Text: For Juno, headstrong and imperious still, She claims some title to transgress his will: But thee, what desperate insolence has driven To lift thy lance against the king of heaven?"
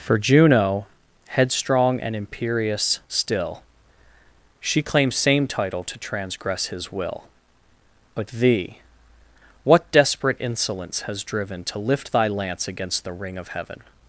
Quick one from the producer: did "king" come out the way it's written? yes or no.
no